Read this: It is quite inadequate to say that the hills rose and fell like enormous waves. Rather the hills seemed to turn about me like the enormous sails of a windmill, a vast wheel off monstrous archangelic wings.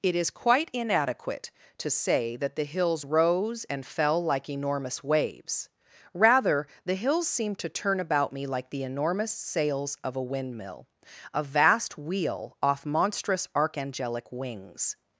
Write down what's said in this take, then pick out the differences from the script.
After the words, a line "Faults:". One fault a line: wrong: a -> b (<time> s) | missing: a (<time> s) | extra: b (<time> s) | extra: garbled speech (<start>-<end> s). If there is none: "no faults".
It is quite inadequate to say that the hills rose and fell like enormous waves. Rather the hills seemed to turn about me like the enormous sails of a windmill, a vast wheel off monstrous archangelic wings.
Faults:
no faults